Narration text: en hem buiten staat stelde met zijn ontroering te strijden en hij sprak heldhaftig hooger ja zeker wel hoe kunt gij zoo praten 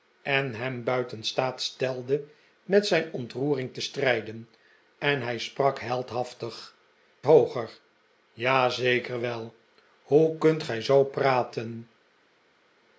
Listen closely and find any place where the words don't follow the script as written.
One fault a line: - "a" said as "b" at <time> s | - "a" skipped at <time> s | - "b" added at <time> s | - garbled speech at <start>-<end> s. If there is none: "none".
none